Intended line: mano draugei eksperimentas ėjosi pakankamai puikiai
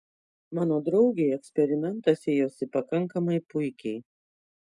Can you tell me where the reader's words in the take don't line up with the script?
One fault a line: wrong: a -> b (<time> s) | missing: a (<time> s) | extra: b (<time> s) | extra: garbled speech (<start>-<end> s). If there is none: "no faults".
no faults